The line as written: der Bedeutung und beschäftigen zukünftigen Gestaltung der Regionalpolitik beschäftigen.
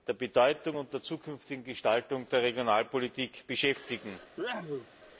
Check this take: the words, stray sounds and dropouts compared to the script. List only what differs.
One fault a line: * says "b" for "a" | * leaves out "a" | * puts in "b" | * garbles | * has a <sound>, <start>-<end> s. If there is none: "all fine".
* says "der" for "beschäftigen"
* has a sneeze, 4.4-4.9 s